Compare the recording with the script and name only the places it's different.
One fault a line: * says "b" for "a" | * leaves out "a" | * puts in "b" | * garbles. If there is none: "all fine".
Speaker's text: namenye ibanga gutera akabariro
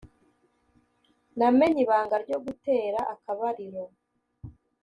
* puts in "ryo"